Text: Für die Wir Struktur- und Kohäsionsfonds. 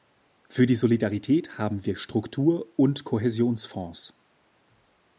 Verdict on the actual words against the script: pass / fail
fail